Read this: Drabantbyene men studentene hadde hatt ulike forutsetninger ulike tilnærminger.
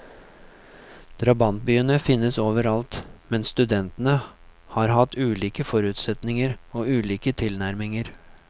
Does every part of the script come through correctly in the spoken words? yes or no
no